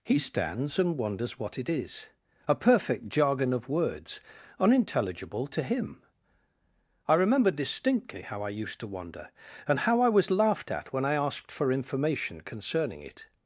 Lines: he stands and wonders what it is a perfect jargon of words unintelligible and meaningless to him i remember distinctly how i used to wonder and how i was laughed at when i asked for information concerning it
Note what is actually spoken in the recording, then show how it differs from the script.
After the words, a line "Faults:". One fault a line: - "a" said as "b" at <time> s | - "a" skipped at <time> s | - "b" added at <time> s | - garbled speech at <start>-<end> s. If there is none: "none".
he stands and wonders what it is a perfect jargon of words unintelligible to him i remember distinctly how i used to wonder and how i was laughed at when i asked for information concerning it
Faults:
- "and meaningless" skipped at 5.4 s